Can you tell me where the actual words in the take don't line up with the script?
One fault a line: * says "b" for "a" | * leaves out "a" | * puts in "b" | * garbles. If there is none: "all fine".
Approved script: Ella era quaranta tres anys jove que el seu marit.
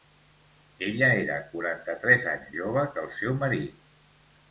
all fine